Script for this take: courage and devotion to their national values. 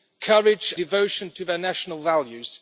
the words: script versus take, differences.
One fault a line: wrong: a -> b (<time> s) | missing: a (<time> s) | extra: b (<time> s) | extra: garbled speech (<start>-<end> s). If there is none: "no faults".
missing: and (0.7 s)